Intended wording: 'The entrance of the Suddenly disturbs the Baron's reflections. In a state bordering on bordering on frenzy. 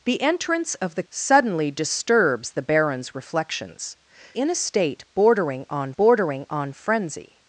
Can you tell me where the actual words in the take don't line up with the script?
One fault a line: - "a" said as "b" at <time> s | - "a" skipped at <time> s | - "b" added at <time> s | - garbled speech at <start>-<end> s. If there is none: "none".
none